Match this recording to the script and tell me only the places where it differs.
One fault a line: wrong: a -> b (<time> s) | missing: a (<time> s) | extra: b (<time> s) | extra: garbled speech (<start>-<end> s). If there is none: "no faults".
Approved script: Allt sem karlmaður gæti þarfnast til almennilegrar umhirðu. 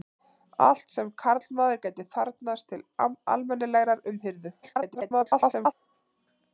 extra: garbled speech (4.6-5.7 s)